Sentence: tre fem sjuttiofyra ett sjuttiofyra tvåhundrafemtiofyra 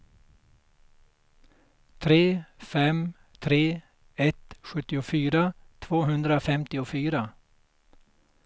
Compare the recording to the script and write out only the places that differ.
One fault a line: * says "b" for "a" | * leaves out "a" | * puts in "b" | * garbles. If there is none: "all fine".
* says "tre" for "sjuttiofyra"